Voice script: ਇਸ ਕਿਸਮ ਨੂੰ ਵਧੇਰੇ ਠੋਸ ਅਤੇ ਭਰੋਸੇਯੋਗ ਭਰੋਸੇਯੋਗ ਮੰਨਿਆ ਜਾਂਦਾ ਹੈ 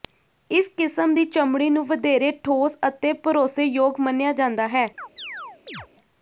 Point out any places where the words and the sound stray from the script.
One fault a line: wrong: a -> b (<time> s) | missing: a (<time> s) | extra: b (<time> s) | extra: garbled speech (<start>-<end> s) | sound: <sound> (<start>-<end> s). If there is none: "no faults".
extra: ਦੀ ਚਮੜੀ (1.1 s)
missing: ਭਰੋਸੇਯੋਗ (4.0 s)
sound: chirp (5.0-5.9 s)